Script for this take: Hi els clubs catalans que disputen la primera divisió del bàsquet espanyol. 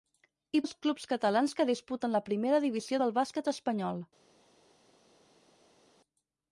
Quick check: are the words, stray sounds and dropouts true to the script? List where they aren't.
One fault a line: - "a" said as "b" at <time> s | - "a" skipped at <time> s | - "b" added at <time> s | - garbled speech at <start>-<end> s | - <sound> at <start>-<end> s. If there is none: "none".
none